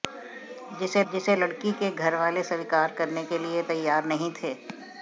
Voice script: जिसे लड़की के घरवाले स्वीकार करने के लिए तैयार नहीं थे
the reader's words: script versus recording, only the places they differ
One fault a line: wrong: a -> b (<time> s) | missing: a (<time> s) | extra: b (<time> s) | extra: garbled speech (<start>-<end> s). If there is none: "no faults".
extra: जिसे (1.1 s)